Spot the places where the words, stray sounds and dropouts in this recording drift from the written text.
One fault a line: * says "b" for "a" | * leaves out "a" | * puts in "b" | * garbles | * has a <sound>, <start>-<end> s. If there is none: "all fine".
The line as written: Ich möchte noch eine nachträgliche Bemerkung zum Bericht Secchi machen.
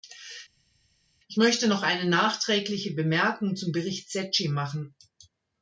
all fine